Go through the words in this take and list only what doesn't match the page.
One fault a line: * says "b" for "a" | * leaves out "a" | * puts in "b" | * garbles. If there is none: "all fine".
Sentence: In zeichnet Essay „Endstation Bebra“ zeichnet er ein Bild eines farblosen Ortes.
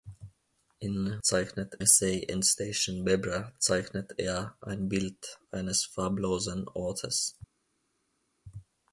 all fine